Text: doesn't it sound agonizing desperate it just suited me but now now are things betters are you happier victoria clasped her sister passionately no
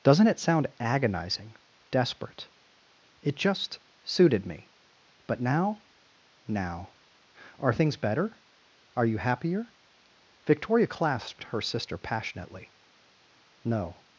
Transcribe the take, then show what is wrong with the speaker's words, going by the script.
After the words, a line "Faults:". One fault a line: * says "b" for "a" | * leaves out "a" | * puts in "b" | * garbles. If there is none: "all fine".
doesn't it sound agonizing desperate it just suited me but now now are things better are you happier victoria clasped her sister passionately no
Faults:
* says "better" for "betters"